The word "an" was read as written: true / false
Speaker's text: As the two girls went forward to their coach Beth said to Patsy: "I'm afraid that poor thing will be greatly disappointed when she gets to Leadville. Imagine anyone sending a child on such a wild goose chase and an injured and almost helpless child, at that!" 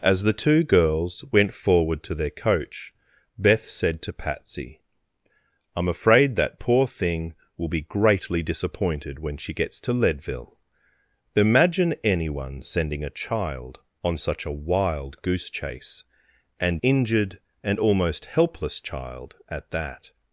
false